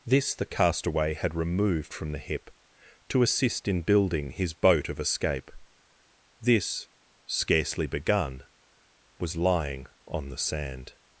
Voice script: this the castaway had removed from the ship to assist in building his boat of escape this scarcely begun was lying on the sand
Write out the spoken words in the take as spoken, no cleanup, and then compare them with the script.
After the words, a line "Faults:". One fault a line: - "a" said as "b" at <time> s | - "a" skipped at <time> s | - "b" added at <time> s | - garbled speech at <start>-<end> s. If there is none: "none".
this the castaway had removed from the hip to assist in building his boat of escape this scarcely begun was lying on the sand
Faults:
- "ship" said as "hip" at 2.2 s